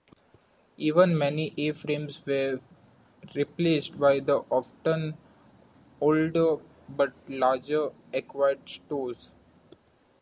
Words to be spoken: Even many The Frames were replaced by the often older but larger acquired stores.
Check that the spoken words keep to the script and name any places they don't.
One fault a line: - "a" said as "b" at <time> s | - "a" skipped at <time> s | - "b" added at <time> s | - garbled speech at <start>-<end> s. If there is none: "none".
- "The" said as "A" at 1.6 s